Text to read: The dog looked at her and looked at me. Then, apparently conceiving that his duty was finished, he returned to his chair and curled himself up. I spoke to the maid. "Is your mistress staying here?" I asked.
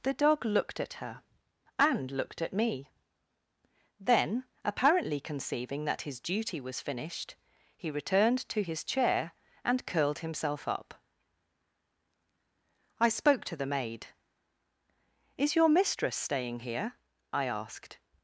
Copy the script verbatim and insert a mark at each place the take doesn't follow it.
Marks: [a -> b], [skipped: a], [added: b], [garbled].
The dog looked at her and looked at me. Then, apparently conceiving that his duty was finished, he returned to his chair and curled himself up. I spoke to the maid. "Is your mistress staying here?" I asked.